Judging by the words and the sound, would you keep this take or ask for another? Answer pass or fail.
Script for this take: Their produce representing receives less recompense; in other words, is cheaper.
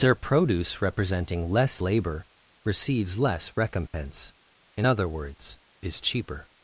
fail